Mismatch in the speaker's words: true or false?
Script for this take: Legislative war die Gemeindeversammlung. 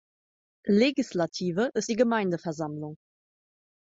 true